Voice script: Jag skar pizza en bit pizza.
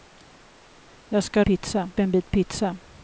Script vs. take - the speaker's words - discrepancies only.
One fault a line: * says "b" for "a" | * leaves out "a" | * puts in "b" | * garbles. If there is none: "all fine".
all fine